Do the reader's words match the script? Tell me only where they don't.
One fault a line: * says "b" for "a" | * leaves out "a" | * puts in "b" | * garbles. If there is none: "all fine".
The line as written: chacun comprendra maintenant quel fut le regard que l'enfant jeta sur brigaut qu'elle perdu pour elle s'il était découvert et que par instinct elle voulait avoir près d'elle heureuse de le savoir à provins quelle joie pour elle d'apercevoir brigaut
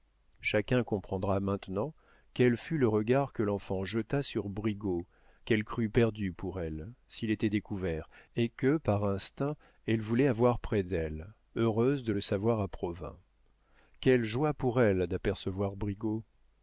* puts in "crut"